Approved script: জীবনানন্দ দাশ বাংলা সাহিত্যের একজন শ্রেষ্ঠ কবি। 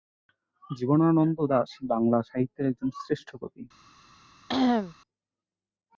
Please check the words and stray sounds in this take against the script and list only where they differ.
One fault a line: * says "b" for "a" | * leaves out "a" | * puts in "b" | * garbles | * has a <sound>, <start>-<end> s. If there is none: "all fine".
* has a cough, 4.5-5.0 s